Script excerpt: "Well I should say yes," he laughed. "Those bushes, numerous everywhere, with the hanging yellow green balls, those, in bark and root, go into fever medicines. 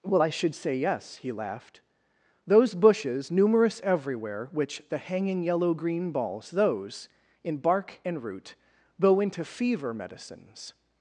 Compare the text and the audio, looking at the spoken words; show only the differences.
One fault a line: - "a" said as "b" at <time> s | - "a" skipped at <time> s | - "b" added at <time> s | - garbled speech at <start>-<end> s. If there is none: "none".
- "with" said as "which" at 4.5 s